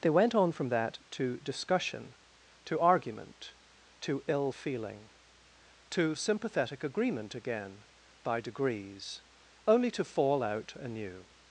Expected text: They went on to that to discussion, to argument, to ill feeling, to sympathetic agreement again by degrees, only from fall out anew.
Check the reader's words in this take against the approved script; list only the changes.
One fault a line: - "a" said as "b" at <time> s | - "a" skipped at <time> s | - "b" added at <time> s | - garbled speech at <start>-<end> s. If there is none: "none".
- "to" said as "from" at 0.5 s
- "from" said as "to" at 9.9 s